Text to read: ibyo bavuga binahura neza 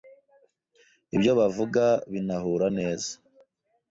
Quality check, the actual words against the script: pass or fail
pass